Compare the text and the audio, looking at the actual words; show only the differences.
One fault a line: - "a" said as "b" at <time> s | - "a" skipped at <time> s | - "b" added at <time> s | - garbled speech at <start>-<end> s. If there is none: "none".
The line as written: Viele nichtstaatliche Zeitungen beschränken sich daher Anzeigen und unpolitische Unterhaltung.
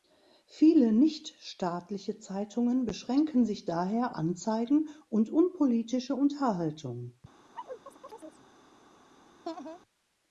none